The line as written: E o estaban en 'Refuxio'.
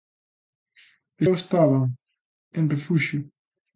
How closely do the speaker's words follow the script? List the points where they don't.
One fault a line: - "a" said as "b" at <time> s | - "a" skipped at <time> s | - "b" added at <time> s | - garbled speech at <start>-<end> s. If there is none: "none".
none